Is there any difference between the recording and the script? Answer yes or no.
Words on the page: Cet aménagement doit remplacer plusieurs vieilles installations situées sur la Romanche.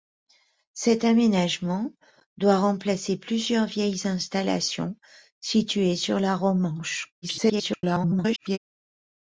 yes